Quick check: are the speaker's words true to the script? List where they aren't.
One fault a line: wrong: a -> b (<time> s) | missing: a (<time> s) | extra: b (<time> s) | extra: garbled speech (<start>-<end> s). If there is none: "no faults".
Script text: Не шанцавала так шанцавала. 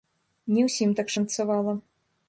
wrong: шанцавала -> ўсім (0.7 s)